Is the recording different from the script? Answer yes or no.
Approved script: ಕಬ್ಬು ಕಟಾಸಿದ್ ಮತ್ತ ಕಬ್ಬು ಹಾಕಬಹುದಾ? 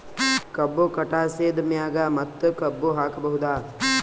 yes